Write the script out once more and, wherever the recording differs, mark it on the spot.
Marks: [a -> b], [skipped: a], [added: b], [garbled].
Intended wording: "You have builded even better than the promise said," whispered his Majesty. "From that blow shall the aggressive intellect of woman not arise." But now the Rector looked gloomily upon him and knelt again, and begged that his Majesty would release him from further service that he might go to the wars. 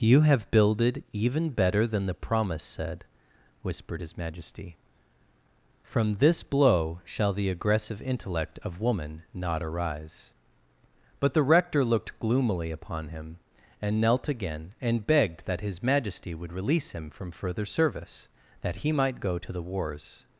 "You have builded even better than the promise said," whispered his Majesty. "From [that -> this] blow shall the aggressive intellect of woman not arise." But [skipped: now] the Rector looked gloomily upon him and knelt again, and begged that his Majesty would release him from further service that he might go to the wars.